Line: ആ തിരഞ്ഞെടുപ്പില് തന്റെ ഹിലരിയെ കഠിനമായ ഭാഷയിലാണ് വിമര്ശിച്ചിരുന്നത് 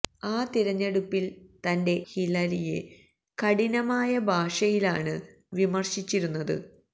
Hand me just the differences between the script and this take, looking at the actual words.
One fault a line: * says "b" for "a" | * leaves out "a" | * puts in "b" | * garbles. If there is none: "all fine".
all fine